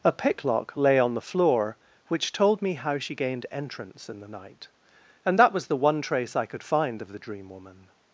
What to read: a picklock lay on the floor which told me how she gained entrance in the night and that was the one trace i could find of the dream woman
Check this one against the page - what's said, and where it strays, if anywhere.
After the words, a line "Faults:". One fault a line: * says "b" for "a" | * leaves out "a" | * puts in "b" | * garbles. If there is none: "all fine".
a picklock lay on the floor which told me how she gained entrance in the night and that was the one trace i could find of the dream woman
Faults:
all fine